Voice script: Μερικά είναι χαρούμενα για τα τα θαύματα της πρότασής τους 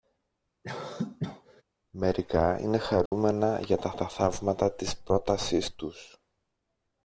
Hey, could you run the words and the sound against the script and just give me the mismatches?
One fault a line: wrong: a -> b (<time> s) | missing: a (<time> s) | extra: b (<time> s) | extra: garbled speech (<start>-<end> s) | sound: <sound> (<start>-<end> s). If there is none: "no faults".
sound: cough (0.6-1.6 s)
sound: dropout (3.1-3.1 s)